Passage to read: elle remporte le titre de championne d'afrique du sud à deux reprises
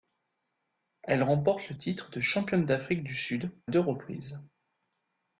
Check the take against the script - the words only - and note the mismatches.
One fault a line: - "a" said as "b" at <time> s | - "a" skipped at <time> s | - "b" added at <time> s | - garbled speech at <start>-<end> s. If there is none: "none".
- "à" skipped at 3.5 s